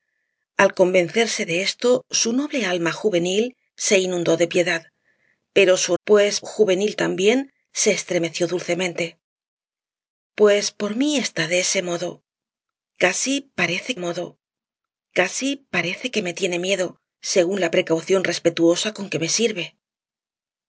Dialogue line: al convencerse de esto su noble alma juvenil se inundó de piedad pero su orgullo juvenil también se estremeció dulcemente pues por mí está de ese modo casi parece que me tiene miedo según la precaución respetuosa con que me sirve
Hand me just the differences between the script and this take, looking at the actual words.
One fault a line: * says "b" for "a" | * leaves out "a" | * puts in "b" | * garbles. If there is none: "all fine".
* says "pues" for "orgullo"
* puts in "modo casi parece"